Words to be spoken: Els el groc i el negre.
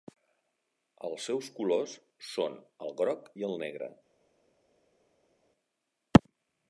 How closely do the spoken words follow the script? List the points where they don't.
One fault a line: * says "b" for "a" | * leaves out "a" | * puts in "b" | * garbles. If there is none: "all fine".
* puts in "seus colors són"